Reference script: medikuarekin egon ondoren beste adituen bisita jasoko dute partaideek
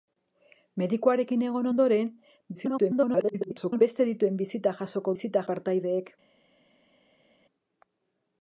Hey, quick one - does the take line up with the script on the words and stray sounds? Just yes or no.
no